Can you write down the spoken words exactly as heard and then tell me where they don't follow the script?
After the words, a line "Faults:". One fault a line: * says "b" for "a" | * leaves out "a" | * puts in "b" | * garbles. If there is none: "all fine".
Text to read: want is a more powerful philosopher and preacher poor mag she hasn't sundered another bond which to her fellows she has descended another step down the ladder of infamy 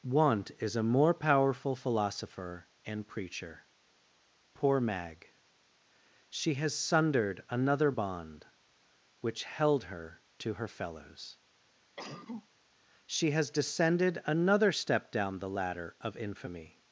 want is a more powerful philosopher and preacher poor mag she has sundered another bond which held her to her fellows she has descended another step down the ladder of infamy
Faults:
* says "has" for "hasn't"
* puts in "held her"